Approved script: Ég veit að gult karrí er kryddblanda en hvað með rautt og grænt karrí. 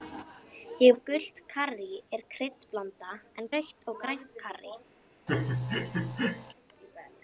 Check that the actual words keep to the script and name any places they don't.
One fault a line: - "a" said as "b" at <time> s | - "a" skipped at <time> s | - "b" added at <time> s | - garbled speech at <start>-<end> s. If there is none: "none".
- "veit" skipped at 0.9 s
- "hvað með" skipped at 3.5 s